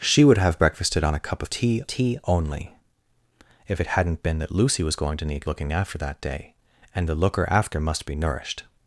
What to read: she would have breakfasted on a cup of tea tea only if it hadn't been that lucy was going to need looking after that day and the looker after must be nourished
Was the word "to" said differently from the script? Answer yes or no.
no